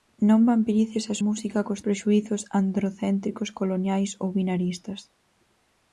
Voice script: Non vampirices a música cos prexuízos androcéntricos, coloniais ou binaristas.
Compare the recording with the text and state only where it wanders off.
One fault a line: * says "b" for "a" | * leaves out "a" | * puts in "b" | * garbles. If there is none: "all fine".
all fine